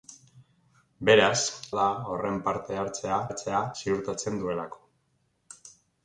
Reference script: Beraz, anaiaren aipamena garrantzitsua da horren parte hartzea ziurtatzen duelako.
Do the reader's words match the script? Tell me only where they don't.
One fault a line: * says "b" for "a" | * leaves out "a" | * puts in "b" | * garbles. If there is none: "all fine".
* leaves out "anaiaren aipamena garrantzitsua"
* puts in "hartzea"